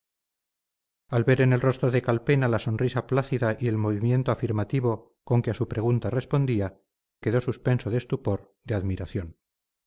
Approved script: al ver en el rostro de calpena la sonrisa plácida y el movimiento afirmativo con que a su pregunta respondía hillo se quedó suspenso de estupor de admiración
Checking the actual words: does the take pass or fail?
fail